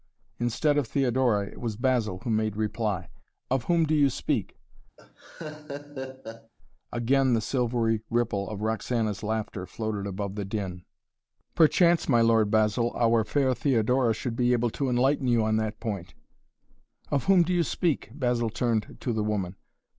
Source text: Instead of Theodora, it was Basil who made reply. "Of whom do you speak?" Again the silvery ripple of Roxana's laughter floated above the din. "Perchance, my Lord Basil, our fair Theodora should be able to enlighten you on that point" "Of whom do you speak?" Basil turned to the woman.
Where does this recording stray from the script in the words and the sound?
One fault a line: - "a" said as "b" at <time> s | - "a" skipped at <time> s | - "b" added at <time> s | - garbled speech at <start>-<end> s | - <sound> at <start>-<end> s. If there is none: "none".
- laugh at 5.0-6.5 s